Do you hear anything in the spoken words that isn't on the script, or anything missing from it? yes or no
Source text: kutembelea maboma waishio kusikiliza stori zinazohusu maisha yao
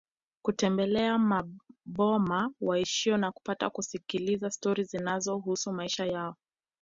yes